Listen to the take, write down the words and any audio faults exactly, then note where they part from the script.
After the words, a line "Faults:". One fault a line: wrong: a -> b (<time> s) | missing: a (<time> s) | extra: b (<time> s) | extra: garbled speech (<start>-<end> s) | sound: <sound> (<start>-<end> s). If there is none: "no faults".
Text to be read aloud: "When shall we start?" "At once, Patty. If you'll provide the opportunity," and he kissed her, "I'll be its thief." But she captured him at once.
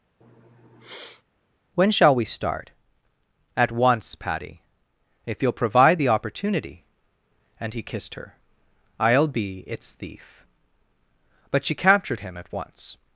"When shall we start?" "At once, Patty. If you'll provide the opportunity," and he kissed her, "I'll be its thief." But she captured him at once.
Faults:
sound: sniff (0.2-1.2 s)